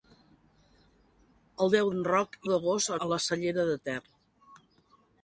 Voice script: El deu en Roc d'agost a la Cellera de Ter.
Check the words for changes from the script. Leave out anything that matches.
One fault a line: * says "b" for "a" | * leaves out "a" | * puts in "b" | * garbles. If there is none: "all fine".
all fine